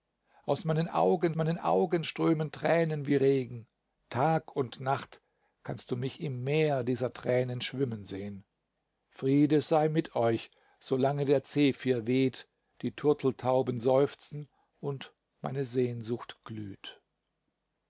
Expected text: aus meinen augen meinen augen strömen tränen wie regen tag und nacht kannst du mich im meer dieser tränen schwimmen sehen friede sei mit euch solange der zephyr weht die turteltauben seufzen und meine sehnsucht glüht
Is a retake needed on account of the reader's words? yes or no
no